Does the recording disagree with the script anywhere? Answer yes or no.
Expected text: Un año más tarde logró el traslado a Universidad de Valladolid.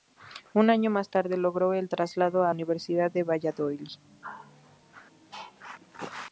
no